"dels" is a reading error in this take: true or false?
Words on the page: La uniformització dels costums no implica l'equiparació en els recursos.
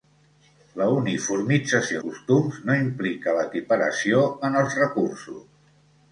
true